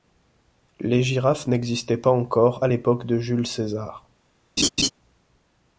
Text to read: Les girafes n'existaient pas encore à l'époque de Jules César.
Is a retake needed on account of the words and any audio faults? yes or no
yes